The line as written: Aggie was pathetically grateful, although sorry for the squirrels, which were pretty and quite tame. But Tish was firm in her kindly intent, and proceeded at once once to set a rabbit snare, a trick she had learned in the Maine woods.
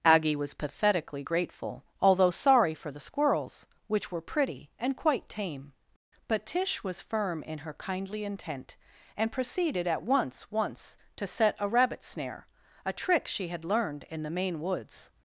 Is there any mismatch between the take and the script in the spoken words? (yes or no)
no